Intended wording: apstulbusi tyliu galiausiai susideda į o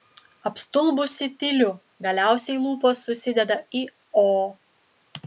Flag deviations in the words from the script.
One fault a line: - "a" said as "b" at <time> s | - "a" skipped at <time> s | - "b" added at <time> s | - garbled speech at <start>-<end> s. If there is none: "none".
- "lūpos" added at 2.6 s